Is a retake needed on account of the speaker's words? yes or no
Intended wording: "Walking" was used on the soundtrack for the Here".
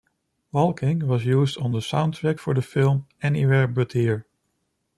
yes